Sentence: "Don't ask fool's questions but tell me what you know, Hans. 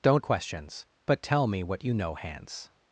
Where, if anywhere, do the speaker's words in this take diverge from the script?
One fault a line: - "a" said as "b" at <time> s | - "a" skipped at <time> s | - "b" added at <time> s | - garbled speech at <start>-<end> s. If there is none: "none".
- "ask fool's" skipped at 0.2 s